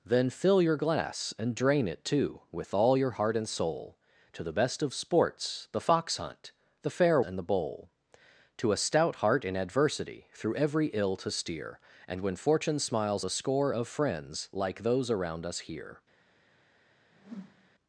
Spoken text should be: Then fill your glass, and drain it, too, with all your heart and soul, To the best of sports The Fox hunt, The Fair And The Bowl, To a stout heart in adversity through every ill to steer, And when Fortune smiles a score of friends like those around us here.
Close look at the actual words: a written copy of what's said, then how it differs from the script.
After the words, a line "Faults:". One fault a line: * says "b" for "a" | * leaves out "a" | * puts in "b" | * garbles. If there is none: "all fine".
Then fill your glass, and drain it, too, with all your heart and soul, To the best of sports The Fox hunt, The Fair And The Bowl, To a stout heart in adversity through every ill to steer, And when Fortune smiles a score of friends like those around us here.
Faults:
all fine